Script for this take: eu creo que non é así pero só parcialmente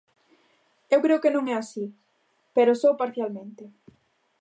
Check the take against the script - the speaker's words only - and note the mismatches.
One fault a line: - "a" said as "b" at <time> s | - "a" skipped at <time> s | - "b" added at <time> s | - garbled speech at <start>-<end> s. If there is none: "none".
none